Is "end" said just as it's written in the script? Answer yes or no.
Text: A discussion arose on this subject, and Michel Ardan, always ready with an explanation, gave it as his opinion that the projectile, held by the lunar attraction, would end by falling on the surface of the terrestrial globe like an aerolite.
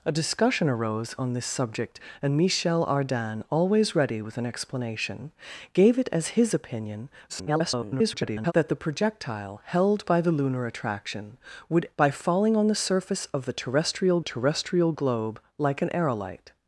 no